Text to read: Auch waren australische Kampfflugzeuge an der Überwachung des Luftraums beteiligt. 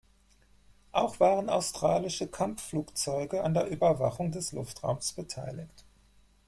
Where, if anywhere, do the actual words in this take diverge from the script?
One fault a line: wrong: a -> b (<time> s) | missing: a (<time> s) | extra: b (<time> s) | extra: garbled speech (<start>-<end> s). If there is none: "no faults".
no faults